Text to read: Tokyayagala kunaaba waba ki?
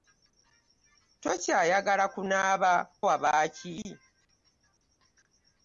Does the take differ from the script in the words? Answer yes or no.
no